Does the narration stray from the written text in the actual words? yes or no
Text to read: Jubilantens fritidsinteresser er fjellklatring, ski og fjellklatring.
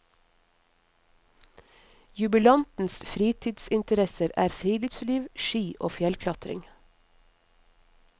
yes